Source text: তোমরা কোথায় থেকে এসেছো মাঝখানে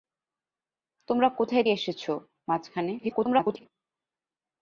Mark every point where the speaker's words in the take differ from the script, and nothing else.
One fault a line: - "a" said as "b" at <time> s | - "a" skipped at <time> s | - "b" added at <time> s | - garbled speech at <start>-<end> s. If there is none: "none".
- "থেকে" skipped at 1.6 s
- garbled speech at 3.0-3.7 s